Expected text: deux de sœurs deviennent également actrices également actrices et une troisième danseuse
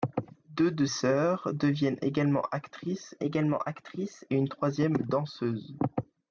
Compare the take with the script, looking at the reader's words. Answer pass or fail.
pass